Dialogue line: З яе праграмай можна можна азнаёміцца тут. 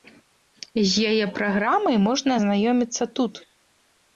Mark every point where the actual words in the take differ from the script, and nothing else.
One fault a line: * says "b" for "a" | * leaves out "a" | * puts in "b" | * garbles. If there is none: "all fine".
* leaves out "можна"